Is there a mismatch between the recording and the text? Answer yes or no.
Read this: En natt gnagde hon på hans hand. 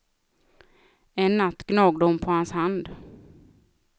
no